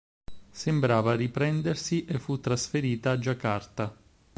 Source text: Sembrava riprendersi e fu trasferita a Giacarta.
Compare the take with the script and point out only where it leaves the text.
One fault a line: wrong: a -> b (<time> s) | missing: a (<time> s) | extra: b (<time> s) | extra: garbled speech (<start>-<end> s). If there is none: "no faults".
no faults